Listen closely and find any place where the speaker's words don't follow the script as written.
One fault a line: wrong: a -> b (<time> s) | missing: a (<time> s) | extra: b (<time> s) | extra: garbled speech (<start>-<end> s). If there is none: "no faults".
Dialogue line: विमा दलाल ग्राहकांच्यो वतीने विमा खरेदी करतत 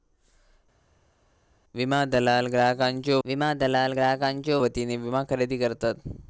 extra: विमा दलाल ग्राहकांच्यो (3.2 s)